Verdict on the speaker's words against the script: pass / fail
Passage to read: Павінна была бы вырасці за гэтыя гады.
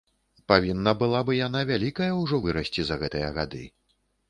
fail